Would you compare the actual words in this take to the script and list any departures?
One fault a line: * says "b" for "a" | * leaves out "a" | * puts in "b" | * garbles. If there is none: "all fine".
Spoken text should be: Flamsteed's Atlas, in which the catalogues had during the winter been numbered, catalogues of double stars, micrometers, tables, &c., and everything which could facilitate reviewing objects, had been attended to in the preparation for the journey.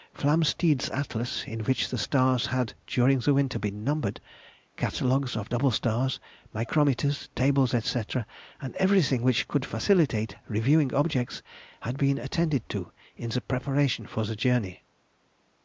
* says "stars" for "catalogues"